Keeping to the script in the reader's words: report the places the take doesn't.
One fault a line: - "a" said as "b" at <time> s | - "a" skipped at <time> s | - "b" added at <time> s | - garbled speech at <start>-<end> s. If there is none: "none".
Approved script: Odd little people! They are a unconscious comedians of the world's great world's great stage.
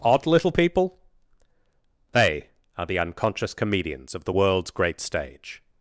- "a" said as "the" at 2.9 s
- "world's great" skipped at 5.0 s